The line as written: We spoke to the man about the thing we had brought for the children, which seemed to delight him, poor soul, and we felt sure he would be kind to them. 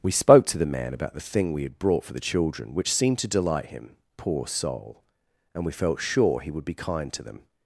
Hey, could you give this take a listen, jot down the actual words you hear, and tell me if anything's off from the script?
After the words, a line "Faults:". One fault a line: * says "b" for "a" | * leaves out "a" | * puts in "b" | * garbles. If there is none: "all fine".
We spoke to the man about the thing we had brought for the children, which seemed to delight him, poor soul, and we felt sure he would be kind to them.
Faults:
all fine